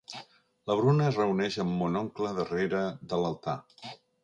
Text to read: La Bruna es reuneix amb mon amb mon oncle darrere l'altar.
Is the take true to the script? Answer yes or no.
no